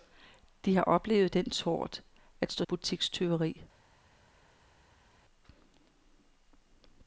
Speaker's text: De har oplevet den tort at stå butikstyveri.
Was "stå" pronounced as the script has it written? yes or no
yes